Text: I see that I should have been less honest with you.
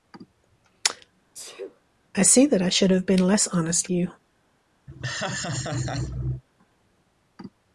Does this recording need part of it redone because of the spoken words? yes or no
yes